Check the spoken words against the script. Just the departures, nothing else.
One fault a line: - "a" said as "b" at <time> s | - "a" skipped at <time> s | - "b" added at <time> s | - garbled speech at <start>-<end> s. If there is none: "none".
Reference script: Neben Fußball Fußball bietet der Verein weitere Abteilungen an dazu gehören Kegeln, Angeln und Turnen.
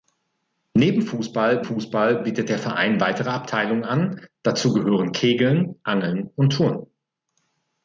none